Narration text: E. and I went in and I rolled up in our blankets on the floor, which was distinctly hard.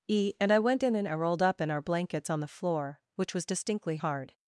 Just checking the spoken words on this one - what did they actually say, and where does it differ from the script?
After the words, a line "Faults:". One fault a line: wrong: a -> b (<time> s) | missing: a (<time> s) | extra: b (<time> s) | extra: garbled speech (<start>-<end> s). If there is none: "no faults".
E. and I went in and I rolled up in our blankets on the floor, which was distinctly hard.
Faults:
no faults